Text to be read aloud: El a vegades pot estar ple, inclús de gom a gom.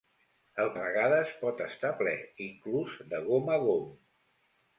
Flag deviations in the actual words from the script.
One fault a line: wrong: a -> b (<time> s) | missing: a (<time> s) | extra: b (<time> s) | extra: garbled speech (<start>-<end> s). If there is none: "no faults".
no faults